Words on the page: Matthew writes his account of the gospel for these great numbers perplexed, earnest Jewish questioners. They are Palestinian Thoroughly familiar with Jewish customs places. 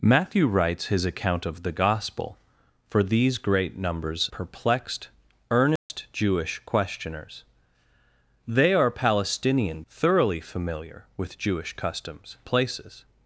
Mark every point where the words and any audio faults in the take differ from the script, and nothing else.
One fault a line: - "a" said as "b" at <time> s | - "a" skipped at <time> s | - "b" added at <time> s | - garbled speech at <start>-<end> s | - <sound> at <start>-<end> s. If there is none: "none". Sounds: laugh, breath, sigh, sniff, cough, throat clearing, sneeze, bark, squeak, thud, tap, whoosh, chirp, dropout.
- dropout at 5.8-5.9 s